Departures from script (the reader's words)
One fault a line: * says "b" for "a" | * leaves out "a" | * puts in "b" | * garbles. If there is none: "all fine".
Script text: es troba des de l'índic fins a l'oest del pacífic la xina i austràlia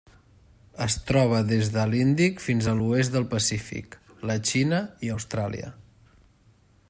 all fine